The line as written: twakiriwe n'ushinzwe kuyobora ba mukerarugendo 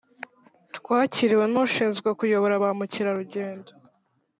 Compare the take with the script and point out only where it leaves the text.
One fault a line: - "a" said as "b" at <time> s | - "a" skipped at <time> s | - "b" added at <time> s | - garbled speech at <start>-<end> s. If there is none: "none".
none